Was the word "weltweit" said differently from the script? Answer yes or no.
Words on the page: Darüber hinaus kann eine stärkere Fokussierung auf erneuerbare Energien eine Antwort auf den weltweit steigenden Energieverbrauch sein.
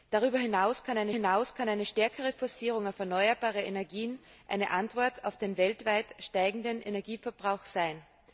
no